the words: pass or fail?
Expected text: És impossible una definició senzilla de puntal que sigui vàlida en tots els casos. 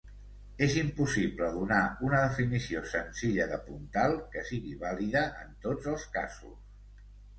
fail